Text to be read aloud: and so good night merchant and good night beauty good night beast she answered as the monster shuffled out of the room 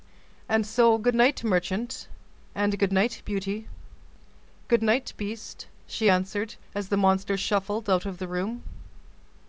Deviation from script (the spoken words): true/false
false